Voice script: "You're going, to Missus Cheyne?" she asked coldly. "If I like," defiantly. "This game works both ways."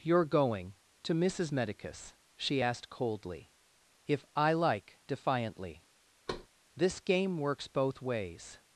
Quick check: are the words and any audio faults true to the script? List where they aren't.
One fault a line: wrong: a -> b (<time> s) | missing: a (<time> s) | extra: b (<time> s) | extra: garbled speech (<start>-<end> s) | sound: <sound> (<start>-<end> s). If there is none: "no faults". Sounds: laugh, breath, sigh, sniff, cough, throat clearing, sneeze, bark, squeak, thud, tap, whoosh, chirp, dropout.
wrong: Cheyne -> Medicus (1.5 s)
sound: thud (6.3-6.5 s)